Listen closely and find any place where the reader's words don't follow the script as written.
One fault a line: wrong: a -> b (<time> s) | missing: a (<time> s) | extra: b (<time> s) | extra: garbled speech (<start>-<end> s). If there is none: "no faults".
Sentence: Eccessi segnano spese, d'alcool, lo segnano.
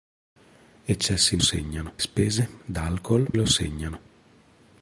no faults